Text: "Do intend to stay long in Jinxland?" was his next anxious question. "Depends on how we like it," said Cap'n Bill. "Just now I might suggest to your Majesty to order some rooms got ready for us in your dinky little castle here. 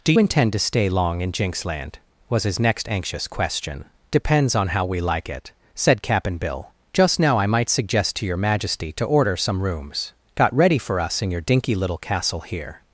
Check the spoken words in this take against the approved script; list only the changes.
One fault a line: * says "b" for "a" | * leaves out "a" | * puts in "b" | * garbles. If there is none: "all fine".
all fine